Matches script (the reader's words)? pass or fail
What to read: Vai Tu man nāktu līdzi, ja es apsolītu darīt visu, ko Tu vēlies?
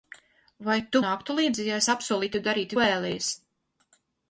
fail